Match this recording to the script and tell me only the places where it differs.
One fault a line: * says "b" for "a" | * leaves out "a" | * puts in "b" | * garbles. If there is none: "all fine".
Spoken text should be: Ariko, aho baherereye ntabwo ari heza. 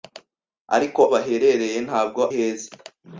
* leaves out "aho"
* leaves out "ari"